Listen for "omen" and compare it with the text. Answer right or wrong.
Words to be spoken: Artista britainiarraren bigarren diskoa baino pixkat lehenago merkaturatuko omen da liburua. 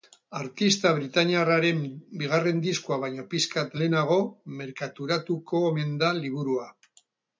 right